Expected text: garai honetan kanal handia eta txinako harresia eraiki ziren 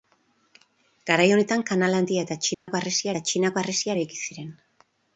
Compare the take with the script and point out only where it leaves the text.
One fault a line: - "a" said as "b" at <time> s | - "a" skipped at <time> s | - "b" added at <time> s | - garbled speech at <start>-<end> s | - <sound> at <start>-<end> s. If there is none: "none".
- dropout at 2.5-2.7 s
- "eta txinako harresia" added at 3.1 s